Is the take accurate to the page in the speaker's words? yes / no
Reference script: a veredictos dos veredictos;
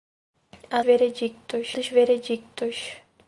yes